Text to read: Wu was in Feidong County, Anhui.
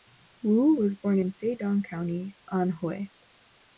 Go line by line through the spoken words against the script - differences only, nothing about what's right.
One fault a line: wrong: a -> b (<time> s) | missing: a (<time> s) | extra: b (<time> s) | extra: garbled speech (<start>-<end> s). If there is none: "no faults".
extra: born (1.0 s)